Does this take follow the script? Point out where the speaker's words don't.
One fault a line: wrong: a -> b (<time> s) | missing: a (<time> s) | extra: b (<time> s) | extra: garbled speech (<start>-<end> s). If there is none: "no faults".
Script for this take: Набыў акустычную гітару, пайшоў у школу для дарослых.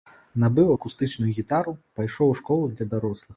no faults